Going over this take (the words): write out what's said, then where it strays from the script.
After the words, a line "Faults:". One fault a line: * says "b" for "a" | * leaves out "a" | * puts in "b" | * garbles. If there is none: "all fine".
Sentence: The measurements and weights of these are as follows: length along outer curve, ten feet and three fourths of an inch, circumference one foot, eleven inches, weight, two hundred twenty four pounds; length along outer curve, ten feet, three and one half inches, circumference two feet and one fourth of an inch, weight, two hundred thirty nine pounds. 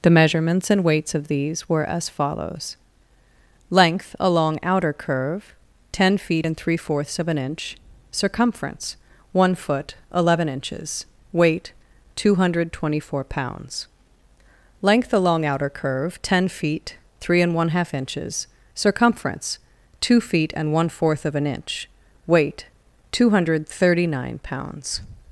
The measurements and weights of these were as follows: length along outer curve, ten feet and three fourths of an inch, circumference one foot, eleven inches, weight, two hundred twenty four pounds; length along outer curve, ten feet, three and one half inches, circumference two feet and one fourth of an inch, weight, two hundred thirty nine pounds.
Faults:
* says "were" for "are"